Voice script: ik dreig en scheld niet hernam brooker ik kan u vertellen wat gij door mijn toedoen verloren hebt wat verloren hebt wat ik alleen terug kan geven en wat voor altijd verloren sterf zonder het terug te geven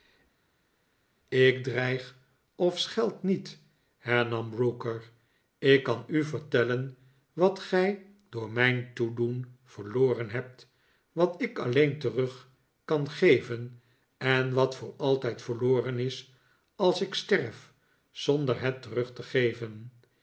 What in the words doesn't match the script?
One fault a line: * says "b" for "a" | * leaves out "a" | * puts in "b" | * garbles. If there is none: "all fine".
* says "of" for "en"
* leaves out "verloren hebt wat"
* puts in "is als ik"